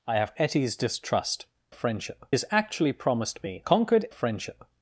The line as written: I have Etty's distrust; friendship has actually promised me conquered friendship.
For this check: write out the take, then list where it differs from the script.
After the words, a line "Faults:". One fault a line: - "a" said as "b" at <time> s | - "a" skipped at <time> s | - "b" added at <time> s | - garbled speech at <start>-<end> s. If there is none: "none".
I have Etty's distrust; friendship has actually promised me conquered friendship.
Faults:
none